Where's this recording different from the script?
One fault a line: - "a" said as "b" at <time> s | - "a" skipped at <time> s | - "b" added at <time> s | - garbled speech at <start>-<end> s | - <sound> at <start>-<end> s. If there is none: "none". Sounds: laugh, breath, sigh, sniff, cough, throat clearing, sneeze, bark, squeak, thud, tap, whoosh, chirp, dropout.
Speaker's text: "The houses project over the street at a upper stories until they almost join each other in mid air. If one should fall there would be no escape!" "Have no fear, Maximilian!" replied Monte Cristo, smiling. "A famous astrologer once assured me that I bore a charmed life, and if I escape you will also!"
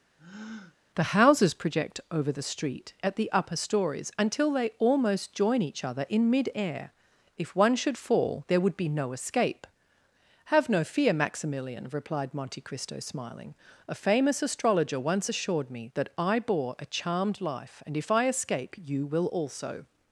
- breath at 0.2-0.8 s
- "a" said as "the" at 3.1 s